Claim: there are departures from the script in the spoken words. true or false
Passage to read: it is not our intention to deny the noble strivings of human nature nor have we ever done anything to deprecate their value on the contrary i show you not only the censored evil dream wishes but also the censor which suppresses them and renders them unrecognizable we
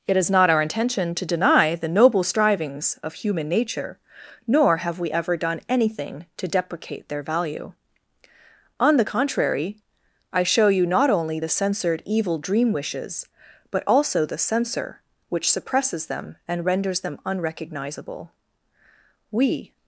false